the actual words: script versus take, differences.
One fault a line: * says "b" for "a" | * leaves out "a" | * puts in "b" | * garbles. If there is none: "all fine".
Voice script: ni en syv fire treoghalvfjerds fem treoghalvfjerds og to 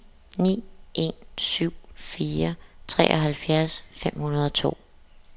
* says "hundrede" for "treoghalvfjerds"